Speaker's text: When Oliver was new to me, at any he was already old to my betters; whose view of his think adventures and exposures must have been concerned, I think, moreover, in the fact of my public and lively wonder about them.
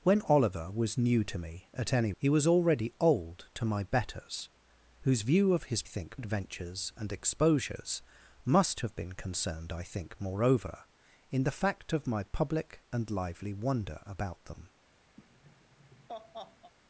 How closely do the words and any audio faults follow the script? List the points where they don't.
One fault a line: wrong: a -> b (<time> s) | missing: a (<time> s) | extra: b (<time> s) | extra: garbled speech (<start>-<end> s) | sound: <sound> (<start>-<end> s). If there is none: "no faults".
sound: laugh (15.2-16.7 s)